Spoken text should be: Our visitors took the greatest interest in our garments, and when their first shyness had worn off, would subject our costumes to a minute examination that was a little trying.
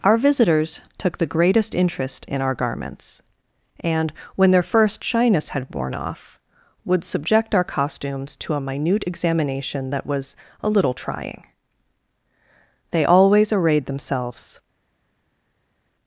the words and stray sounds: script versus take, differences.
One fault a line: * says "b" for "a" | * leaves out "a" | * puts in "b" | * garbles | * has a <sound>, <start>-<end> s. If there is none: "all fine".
* puts in "They always arrayed themselves"